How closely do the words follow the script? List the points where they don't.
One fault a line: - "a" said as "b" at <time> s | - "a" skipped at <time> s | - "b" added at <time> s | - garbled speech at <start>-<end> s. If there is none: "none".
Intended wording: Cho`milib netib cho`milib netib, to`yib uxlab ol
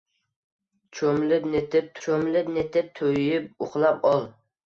none